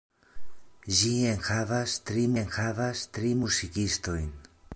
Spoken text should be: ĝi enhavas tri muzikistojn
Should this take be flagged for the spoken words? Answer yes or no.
yes